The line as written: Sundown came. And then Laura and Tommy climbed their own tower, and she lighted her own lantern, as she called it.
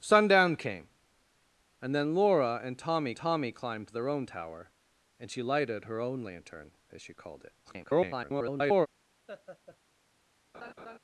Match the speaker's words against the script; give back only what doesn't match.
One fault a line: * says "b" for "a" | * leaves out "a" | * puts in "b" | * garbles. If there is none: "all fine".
* puts in "Tommy"
* garbles